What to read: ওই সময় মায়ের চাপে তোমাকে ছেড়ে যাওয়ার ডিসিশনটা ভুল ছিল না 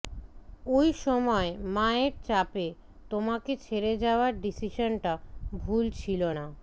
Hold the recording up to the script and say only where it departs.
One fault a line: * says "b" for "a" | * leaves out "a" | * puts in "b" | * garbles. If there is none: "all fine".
all fine